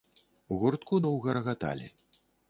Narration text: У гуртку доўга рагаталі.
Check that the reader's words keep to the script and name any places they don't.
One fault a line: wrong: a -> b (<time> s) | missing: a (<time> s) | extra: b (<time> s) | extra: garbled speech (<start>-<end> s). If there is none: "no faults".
no faults